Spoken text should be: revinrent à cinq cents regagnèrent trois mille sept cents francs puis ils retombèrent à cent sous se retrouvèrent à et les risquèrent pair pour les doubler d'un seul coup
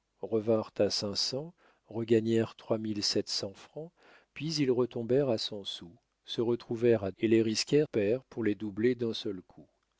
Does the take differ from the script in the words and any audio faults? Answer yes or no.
no